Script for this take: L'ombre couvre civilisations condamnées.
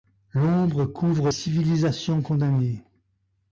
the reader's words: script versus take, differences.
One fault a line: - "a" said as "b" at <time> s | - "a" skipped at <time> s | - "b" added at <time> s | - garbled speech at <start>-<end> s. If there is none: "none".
none